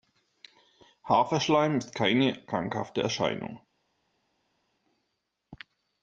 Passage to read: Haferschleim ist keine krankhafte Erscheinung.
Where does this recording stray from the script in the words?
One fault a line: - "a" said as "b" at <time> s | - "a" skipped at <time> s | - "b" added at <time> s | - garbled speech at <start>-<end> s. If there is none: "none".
none